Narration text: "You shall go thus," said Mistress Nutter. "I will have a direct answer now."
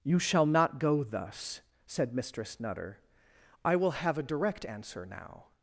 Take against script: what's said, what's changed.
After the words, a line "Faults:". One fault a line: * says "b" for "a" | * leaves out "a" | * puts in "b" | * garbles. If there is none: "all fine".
"You shall not go thus," said Mistress Nutter. "I will have a direct answer now."
Faults:
* puts in "not"